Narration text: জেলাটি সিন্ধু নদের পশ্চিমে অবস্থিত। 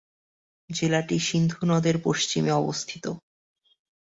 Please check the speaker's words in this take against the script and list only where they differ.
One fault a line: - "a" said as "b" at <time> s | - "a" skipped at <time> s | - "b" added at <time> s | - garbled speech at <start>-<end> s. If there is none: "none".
none